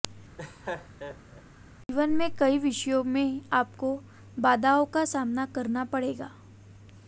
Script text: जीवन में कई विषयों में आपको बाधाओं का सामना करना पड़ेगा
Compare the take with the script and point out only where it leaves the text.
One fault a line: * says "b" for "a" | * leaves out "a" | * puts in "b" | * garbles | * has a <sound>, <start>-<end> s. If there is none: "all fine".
* has a laugh, 0.4-1.4 s